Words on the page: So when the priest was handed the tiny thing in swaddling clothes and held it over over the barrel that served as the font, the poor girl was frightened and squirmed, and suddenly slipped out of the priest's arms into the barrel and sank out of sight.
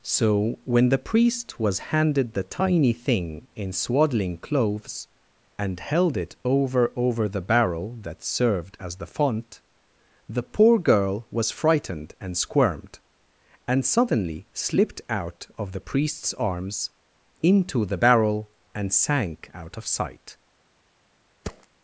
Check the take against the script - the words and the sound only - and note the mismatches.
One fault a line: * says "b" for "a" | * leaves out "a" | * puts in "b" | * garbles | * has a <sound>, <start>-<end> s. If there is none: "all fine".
* has a thud, 21.4-21.7 s